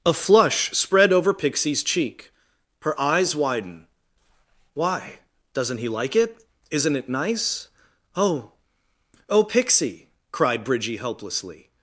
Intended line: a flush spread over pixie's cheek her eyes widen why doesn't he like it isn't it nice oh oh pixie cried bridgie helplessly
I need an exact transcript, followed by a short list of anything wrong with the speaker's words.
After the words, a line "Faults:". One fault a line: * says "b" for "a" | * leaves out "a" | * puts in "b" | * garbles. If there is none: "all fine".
a flush spread over pixie's cheek her eyes widen why doesn't he like it isn't it nice oh oh pixie cried bridgie helplessly
Faults:
all fine